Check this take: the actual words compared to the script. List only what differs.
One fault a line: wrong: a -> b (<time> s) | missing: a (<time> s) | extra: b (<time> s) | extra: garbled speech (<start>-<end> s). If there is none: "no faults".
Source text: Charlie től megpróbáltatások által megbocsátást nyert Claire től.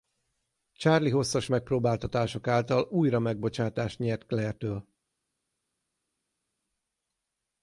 wrong: től -> hosszas (1.1 s)
extra: újra (2.9 s)